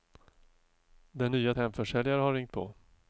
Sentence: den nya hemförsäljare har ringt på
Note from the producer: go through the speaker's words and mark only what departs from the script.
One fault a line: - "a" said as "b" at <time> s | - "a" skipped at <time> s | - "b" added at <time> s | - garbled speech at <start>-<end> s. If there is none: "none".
none